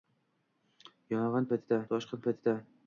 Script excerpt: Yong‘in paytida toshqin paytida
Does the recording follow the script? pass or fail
pass